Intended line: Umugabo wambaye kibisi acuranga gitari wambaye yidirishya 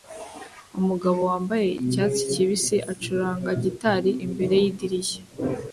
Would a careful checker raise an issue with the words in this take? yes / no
yes